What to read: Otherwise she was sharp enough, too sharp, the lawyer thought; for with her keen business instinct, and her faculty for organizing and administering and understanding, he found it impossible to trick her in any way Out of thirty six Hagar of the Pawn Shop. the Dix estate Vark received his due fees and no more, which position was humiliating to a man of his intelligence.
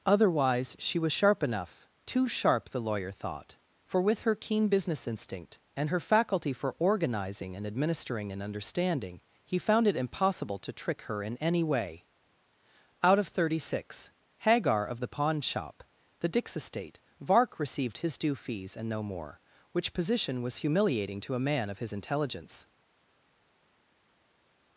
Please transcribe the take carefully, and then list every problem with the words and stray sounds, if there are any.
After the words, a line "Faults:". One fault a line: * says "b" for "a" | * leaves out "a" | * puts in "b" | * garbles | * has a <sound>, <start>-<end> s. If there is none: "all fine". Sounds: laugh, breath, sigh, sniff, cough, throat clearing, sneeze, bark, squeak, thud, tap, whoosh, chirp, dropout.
Otherwise she was sharp enough, too sharp, the lawyer thought; for with her keen business instinct, and her faculty for organizing and administering and understanding, he found it impossible to trick her in any way Out of thirty six Hagar of the Pawn Shop. the Dix estate Vark received his due fees and no more, which position was humiliating to a man of his intelligence.
Faults:
all fine